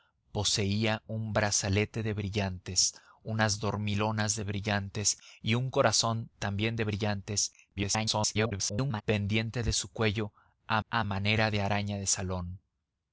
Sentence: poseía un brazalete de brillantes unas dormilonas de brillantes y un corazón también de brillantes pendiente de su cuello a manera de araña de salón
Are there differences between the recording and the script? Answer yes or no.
yes